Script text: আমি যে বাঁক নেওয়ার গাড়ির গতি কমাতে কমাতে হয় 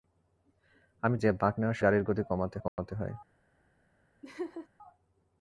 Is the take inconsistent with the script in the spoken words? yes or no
no